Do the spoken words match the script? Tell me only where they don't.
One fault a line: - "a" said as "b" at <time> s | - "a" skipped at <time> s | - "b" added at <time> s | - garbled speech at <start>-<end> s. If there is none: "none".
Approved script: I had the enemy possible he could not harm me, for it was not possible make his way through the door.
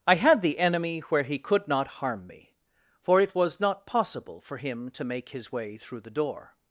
- "possible" said as "where" at 1.0 s
- "for him to" added at 4.4 s